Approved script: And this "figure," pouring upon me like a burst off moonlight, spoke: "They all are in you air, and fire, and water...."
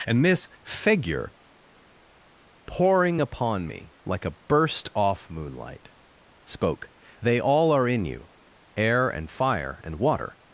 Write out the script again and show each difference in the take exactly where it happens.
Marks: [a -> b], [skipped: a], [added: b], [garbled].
And this "figure," pouring upon me like a burst off moonlight, spoke: "They all are in you air, and fire, and water...."